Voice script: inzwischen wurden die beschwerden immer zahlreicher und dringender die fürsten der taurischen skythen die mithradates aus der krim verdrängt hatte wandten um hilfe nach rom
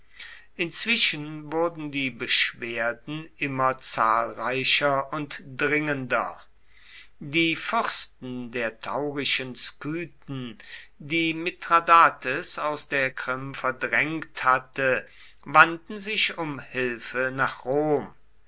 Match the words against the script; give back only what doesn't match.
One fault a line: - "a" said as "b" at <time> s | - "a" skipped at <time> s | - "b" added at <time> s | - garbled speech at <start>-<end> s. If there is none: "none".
- "sich" added at 16.0 s